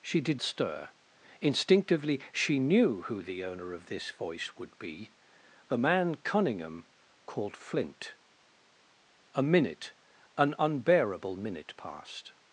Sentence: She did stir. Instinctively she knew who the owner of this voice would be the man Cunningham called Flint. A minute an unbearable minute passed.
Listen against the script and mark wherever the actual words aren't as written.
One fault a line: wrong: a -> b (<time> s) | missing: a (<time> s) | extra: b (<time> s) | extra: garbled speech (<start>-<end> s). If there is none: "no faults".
no faults